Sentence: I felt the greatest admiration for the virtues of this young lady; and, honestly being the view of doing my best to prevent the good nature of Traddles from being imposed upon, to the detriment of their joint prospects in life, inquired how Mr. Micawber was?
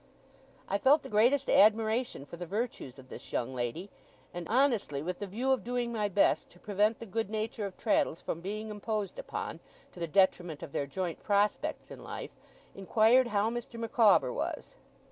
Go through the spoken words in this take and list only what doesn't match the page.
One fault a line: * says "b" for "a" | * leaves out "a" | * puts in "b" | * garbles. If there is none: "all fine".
* says "with" for "being"